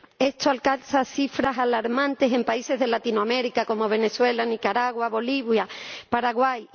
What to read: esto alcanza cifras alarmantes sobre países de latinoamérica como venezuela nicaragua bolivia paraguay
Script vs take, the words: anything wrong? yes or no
yes